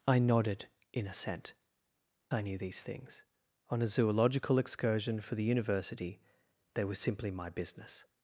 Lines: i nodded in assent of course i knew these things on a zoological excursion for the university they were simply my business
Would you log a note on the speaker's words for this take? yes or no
yes